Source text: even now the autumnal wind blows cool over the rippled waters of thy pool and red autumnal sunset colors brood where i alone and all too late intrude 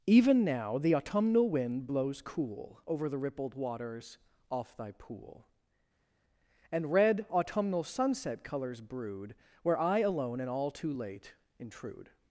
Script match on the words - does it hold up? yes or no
no